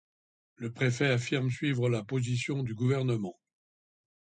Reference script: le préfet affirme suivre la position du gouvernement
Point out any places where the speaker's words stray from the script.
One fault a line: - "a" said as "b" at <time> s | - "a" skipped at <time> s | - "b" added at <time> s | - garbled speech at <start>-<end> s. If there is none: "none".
none